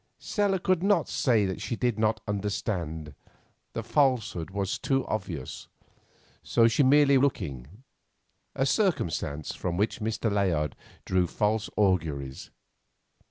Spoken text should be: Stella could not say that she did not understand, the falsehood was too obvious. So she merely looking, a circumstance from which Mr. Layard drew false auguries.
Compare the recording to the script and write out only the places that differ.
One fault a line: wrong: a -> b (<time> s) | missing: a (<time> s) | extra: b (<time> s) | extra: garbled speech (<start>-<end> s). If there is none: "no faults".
no faults